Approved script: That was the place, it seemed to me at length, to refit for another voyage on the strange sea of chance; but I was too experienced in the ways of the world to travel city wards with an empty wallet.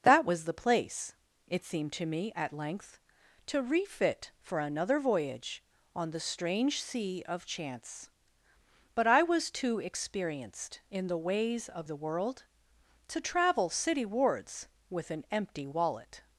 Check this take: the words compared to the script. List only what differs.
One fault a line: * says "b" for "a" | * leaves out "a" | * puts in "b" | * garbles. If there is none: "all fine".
all fine